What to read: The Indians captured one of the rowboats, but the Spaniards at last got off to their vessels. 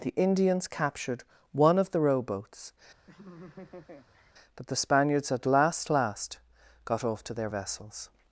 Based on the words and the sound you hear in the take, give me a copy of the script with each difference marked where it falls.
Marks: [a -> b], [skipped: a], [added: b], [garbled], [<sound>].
The Indians captured one of the rowboats, [laugh] but the Spaniards at last [added: last] got off to their vessels.